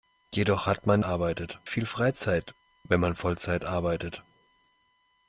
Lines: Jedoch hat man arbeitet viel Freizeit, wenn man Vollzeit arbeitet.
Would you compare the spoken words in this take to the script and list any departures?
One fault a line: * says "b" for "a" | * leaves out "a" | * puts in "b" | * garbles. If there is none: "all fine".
all fine